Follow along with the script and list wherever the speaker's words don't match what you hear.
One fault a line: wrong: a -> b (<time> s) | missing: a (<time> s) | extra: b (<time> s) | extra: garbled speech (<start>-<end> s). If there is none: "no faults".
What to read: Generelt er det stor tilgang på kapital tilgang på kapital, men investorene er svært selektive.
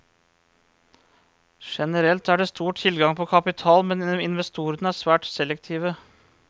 missing: tilgang på kapital (3.9 s)